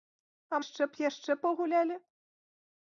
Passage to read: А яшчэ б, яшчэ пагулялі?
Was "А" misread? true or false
false